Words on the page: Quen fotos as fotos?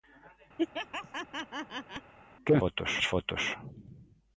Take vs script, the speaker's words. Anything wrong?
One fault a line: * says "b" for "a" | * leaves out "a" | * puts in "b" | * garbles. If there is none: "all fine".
all fine